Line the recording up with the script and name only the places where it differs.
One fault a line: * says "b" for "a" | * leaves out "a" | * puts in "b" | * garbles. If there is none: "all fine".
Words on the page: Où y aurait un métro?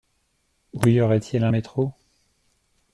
* puts in "il"